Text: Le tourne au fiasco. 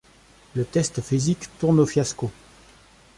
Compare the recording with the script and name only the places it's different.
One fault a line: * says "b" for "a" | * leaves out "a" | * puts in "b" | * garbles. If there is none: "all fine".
* puts in "test physique"